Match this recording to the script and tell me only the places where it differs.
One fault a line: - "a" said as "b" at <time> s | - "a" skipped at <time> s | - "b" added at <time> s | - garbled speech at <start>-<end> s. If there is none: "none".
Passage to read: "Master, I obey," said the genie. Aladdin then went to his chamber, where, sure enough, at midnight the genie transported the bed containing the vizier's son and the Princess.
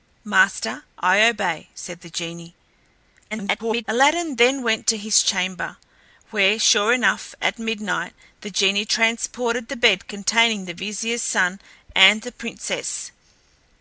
- garbled speech at 3.3-3.8 s